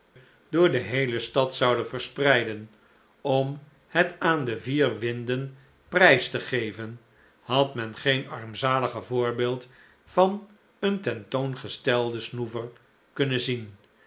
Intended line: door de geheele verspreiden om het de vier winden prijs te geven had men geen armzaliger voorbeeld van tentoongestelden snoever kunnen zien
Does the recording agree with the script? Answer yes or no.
no